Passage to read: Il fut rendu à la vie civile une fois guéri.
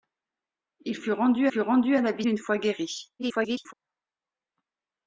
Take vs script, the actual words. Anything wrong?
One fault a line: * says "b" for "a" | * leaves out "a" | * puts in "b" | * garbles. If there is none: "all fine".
* puts in "fut rendu"
* leaves out "civile"
* garbles